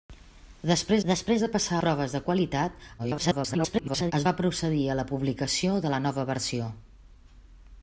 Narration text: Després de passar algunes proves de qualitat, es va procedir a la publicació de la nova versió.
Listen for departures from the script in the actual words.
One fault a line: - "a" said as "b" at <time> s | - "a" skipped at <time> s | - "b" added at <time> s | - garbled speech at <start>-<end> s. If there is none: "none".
- "després" added at 1.1 s
- "algunes" skipped at 1.8 s
- garbled speech at 3.0-4.1 s